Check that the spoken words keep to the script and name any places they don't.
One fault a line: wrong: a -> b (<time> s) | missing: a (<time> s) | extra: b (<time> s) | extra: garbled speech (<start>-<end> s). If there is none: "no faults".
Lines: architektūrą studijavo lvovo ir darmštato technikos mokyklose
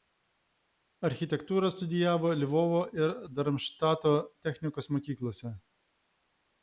no faults